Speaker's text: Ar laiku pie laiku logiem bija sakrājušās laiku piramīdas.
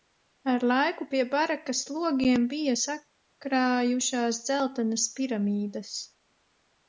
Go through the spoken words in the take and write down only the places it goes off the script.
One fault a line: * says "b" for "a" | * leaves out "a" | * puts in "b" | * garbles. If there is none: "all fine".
* says "barakas" for "laiku"
* says "dzeltenas" for "laiku"